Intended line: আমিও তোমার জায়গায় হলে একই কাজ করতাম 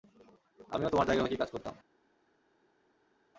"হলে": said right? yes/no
no